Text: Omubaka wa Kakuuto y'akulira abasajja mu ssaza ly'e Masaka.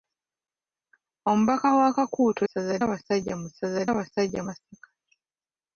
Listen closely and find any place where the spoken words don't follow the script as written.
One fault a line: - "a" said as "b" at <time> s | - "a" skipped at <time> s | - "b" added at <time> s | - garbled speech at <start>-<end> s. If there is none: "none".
- "y'akulira" said as "ssaza" at 2.4 s
- "ly'e" said as "abasajja" at 3.9 s